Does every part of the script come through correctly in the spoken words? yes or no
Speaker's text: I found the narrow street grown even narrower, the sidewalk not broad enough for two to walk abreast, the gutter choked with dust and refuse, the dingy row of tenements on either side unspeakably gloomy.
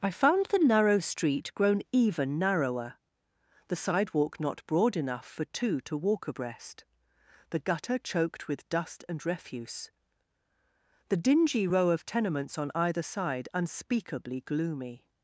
yes